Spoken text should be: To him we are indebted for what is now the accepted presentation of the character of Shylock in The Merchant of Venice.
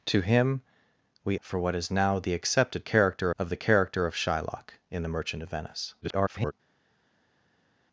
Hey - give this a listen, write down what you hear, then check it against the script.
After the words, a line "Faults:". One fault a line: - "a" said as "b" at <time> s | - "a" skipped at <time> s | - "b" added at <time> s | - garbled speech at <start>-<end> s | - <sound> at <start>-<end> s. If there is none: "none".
To him we for what is now the accepted character of the character of Shylock in The Merchant of Venice. [garbled]
Faults:
- "are indebted" skipped at 1.4 s
- "presentation" said as "character" at 2.8 s
- garbled speech at 6.0-6.5 s